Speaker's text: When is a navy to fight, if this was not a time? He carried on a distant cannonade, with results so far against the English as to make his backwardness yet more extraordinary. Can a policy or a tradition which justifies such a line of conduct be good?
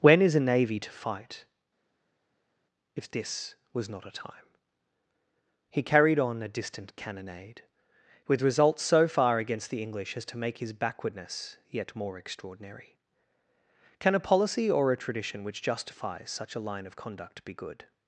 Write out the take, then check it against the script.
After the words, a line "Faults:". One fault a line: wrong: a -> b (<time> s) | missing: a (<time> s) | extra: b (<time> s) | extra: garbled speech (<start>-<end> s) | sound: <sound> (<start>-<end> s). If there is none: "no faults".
When is a navy to fight, if this was not a time? He carried on a distant cannonade, with results so far against the English as to make his backwardness yet more extraordinary. Can a policy or a tradition which justifies such a line of conduct be good?
Faults:
no faults